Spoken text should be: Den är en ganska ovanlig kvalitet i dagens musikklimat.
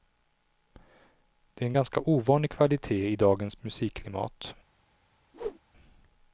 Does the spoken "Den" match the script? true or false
false